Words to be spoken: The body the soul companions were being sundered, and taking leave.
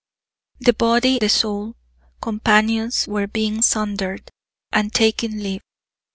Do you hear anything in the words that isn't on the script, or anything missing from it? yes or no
no